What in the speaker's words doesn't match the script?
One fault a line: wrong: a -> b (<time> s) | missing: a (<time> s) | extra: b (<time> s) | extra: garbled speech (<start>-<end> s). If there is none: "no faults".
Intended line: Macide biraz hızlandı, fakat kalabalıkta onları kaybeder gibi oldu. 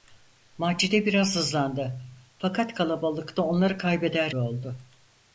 missing: gibi (4.3 s)